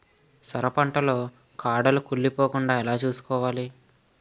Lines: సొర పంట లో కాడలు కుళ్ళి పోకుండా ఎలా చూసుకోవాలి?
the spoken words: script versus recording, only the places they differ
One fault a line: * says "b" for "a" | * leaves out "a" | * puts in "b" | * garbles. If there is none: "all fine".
all fine